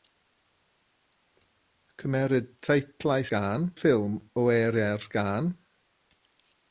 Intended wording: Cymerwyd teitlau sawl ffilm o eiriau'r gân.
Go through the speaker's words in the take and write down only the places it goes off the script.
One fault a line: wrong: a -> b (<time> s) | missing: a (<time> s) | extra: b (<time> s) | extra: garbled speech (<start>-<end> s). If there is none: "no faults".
wrong: sawl -> gân (3.4 s)